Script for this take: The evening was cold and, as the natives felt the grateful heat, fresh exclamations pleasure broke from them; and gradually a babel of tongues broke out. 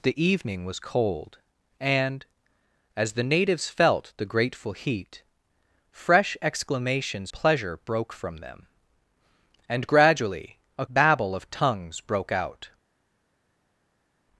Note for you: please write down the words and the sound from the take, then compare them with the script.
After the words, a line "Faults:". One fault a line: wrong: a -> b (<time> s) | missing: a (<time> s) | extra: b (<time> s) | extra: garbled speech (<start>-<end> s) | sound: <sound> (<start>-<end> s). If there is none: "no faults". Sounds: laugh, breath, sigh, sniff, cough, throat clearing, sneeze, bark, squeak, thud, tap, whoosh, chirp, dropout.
The evening was cold and, as the natives felt the grateful heat, fresh exclamations pleasure broke from them; and gradually a babel of tongues broke out.
Faults:
no faults